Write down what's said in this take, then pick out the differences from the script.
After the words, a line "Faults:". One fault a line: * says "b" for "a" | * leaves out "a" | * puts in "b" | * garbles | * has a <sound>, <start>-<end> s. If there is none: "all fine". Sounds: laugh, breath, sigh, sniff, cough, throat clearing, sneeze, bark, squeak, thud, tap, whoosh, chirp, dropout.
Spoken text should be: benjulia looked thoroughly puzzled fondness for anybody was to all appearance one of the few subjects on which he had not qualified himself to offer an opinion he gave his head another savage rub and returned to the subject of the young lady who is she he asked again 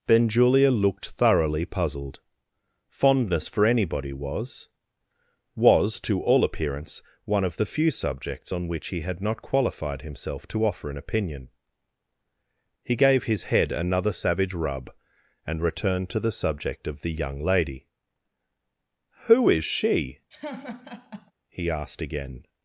benjulia looked thoroughly puzzled fondness for anybody was was to all appearance one of the few subjects on which he had not qualified himself to offer an opinion he gave his head another savage rub and returned to the subject of the young lady who is she he asked again
Faults:
* puts in "was"
* has a laugh, 20.3-21.3 s